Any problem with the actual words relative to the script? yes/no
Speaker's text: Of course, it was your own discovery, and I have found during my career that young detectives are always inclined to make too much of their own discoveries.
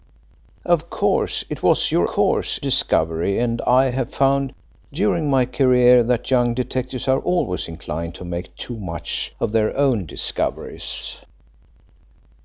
yes